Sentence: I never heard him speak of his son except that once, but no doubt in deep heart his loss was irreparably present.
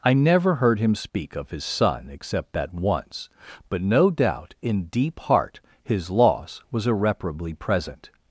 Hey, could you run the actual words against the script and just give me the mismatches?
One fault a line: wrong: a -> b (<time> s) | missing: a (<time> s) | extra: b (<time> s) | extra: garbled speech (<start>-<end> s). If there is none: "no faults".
no faults